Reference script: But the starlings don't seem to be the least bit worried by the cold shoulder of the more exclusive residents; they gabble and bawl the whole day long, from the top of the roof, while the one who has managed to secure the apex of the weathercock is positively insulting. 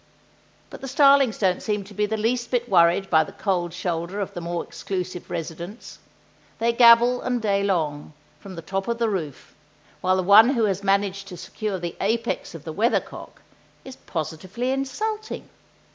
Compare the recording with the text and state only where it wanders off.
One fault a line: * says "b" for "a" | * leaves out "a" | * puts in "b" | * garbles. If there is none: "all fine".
* leaves out "bawl the whole"